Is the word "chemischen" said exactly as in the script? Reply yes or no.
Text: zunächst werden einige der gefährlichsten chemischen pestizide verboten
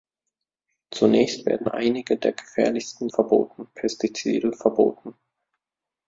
no